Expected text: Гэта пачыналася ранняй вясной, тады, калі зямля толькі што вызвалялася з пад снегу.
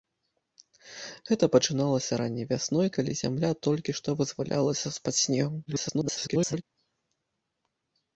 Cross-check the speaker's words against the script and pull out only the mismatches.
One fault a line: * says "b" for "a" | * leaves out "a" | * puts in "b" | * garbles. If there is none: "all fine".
* leaves out "тады"
* garbles